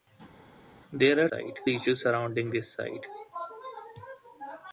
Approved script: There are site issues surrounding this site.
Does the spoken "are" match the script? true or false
true